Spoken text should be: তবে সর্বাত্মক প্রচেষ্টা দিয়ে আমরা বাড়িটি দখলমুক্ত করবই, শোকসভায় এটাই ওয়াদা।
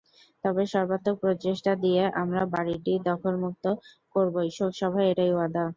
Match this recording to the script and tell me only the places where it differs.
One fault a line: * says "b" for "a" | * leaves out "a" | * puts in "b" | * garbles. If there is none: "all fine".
all fine